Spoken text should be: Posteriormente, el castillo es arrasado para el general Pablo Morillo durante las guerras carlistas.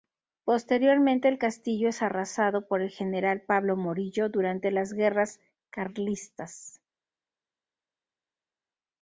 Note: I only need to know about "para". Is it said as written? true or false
false